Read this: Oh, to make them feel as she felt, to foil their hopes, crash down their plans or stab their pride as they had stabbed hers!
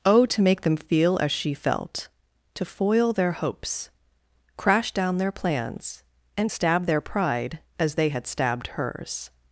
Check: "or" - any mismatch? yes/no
yes